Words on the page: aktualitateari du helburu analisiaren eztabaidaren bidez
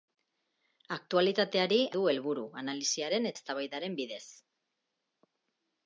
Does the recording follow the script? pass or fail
pass